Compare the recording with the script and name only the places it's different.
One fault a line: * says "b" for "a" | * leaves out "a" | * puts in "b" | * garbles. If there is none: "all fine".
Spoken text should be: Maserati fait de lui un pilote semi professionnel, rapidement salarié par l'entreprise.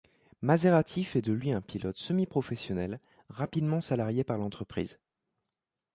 all fine